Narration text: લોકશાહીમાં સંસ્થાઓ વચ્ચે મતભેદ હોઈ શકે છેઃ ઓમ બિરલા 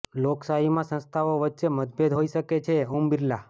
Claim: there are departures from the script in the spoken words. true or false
false